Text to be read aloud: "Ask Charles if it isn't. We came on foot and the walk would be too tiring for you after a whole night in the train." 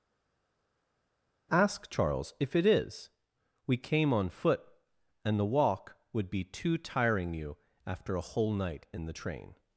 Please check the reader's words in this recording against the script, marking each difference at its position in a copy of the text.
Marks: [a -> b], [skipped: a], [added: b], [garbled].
"Ask Charles if it [isn't. -> is] We came on foot and the walk would be too tiring [skipped: for] you after a whole night in the train."